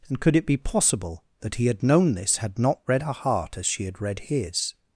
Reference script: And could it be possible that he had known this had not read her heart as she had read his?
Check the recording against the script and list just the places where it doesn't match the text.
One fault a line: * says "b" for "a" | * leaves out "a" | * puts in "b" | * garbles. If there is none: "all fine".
all fine